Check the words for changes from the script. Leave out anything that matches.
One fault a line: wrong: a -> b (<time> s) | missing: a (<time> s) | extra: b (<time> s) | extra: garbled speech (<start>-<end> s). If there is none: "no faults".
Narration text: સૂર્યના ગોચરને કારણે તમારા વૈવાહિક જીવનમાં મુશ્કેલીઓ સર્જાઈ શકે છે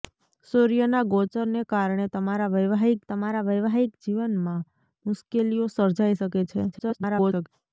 extra: તમારા વૈવાહિક (3.1 s)
extra: garbled speech (6.7-7.5 s)